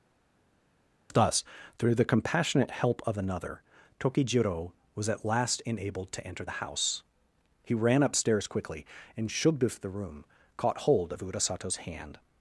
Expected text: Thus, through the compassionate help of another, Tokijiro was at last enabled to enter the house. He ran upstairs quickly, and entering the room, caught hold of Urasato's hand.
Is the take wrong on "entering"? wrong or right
wrong